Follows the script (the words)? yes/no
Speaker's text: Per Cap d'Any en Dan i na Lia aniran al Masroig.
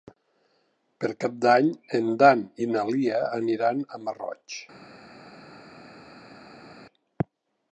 yes